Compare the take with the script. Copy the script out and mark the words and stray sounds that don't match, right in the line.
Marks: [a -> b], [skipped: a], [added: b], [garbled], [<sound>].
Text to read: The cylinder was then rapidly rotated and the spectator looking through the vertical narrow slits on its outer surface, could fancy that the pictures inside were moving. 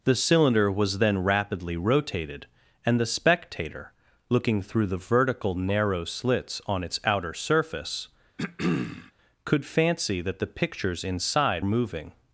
The cylinder was then rapidly rotated and the spectator looking through the vertical narrow slits on its outer surface, [throat clearing] could fancy that the pictures inside [skipped: were] moving.